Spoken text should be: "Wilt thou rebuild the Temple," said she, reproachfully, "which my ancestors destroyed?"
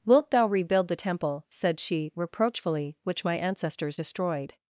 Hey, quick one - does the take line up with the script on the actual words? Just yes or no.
yes